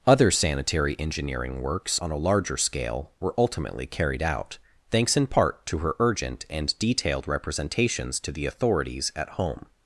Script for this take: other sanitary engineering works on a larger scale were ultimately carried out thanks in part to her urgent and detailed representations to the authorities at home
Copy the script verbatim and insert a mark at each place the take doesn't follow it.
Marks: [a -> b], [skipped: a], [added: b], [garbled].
other sanitary engineering works on a larger scale were ultimately carried out thanks in part to her urgent and detailed representations to the authorities at home